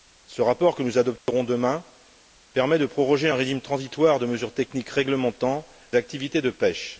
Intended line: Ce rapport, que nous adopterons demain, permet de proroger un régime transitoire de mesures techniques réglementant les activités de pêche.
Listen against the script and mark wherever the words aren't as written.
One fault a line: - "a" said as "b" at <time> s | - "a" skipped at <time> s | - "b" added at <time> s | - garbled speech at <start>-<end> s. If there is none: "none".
- "les" skipped at 5.7 s